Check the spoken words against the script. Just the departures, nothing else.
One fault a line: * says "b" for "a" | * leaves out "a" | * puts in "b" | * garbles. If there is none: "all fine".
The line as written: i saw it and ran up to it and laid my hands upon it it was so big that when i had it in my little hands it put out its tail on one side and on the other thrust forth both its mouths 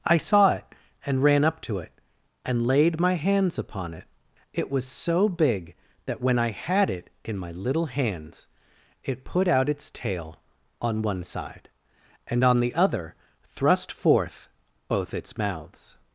all fine